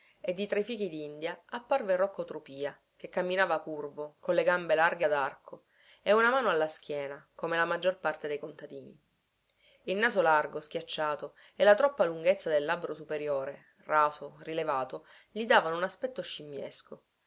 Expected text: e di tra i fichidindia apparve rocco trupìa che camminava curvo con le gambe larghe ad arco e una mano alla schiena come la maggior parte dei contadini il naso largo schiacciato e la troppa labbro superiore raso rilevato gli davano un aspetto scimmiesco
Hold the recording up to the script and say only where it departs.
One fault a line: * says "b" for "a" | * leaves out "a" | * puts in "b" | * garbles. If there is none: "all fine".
* puts in "lunghezza del"